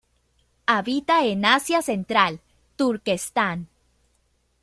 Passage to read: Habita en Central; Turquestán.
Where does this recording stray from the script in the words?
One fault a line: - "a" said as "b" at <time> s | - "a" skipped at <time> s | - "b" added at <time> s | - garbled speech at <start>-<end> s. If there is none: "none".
- "Asia" added at 1.4 s